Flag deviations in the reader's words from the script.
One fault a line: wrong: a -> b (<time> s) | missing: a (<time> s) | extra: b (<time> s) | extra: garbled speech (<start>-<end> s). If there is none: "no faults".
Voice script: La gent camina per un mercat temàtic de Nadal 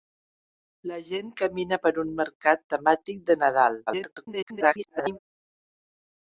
extra: garbled speech (3.9-5.2 s)